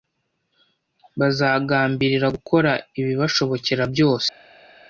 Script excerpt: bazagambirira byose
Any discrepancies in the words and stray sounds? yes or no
yes